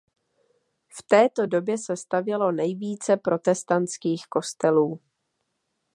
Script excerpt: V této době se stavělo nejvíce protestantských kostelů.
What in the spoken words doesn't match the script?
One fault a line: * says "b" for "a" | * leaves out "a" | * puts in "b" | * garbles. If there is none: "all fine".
all fine